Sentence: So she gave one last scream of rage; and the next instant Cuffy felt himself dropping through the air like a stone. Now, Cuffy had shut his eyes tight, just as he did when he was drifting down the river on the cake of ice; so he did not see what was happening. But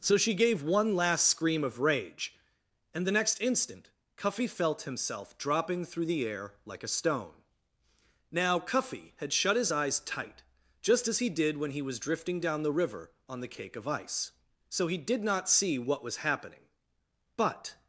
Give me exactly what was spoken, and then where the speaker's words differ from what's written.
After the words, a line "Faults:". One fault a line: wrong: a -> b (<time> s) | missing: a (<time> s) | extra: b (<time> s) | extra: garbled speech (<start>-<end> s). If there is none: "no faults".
So she gave one last scream of rage; and the next instant Cuffy felt himself dropping through the air like a stone. Now, Cuffy had shut his eyes tight, just as he did when he was drifting down the river on the cake of ice; so he did not see what was happening. But
Faults:
no faults